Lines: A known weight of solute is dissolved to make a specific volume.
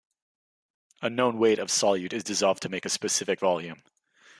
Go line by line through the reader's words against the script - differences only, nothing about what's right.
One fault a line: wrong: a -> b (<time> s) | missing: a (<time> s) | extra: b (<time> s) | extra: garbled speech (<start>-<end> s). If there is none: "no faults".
no faults